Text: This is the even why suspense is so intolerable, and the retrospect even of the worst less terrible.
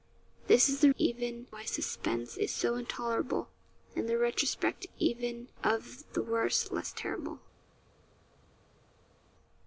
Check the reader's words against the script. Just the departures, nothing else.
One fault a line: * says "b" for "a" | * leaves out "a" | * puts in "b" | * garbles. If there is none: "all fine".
all fine